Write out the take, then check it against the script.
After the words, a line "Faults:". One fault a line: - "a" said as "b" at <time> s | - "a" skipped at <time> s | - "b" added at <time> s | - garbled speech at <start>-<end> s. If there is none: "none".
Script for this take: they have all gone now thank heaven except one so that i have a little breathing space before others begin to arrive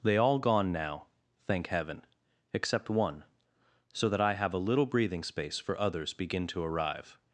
they all gone now thank heaven except one so that i have a little breathing space for others begin to arrive
Faults:
- "have" skipped at 0.2 s
- "before" said as "for" at 5.6 s